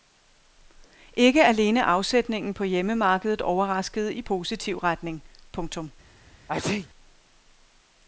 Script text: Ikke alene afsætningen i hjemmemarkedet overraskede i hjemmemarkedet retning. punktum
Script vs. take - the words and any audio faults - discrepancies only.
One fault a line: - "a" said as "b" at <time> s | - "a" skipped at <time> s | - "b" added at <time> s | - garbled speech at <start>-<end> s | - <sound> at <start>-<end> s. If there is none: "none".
- "i" said as "på" at 2.5 s
- "hjemmemarkedet" said as "positiv" at 4.2 s
- sneeze at 6.5-6.9 s